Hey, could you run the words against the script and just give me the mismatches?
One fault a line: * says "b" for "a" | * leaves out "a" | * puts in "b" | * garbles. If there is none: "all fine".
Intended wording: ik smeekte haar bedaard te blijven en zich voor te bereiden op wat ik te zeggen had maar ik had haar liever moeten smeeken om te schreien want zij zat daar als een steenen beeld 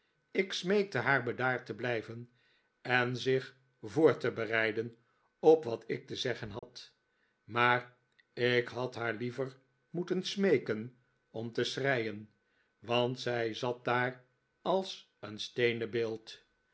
all fine